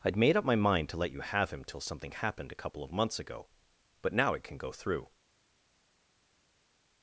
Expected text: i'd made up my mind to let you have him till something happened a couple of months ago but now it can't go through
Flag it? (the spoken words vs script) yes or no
yes